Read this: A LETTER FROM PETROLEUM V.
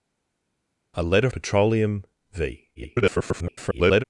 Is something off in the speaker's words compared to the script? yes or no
yes